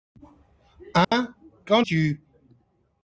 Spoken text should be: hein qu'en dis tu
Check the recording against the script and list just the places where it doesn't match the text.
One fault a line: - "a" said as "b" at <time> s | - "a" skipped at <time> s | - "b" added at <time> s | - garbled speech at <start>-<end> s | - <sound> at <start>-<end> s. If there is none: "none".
- dropout at 1.0-1.1 s
- "dis" skipped at 1.8 s